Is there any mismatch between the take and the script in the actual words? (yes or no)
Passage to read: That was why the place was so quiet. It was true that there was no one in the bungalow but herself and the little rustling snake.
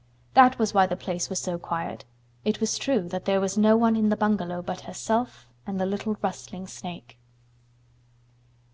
no